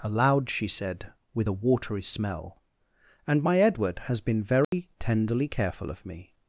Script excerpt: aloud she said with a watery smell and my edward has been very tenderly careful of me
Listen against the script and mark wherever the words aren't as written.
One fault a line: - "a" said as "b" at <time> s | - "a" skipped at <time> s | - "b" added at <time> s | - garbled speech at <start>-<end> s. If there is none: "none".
none